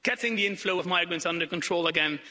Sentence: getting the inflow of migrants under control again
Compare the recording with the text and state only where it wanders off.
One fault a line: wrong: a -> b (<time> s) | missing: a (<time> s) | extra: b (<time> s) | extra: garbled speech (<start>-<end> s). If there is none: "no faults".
no faults